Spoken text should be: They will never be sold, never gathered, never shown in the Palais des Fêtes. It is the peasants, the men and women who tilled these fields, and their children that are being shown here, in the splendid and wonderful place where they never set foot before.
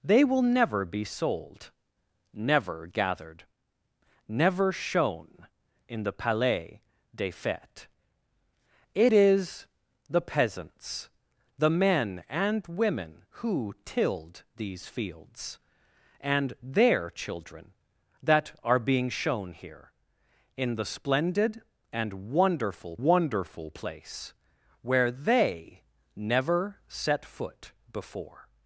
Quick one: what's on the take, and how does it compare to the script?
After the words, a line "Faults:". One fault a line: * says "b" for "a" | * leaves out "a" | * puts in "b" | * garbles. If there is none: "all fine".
They will never be sold, never gathered, never shown in the Palais des Fêtes. It is the peasants, the men and women who tilled these fields, and their children that are being shown here, in the splendid and wonderful wonderful place where they never set foot before.
Faults:
* puts in "wonderful"